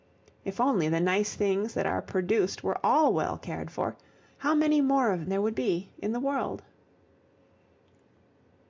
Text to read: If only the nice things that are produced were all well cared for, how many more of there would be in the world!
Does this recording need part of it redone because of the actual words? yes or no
no